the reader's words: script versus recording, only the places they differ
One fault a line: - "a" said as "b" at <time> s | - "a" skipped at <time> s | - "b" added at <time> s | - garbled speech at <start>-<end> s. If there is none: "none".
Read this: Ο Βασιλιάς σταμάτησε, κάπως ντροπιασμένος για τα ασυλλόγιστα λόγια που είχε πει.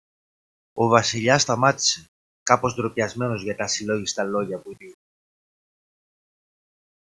- "είχε" skipped at 4.7 s